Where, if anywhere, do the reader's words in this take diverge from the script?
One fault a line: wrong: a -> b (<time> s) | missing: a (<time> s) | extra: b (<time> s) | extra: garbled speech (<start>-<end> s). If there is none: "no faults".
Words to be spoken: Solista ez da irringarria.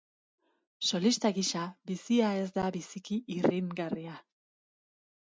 extra: gisa bizia (1.4 s)
extra: biziki (2.8 s)